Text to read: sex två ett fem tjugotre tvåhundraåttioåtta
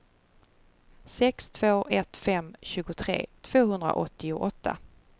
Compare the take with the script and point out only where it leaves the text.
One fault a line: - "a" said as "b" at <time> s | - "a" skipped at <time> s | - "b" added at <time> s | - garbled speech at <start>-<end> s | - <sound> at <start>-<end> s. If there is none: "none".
none